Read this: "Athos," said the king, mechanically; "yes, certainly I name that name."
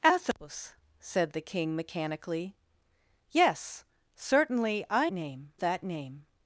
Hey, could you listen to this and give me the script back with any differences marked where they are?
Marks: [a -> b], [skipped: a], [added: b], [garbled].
"Athos," said the king, mechanically; "yes, certainly I name that name."